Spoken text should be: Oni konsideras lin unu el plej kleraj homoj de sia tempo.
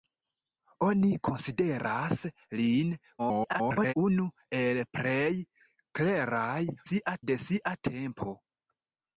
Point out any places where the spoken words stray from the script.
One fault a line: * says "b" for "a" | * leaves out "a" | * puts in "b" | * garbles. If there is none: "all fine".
* garbles
* says "sia" for "homoj"